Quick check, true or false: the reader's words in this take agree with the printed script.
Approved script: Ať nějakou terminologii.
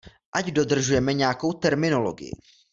false